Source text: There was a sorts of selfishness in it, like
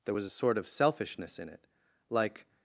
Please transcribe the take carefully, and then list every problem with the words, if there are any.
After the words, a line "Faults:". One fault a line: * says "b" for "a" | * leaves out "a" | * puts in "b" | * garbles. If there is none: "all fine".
There was a sort of selfishness in it, like
Faults:
* says "sort" for "sorts"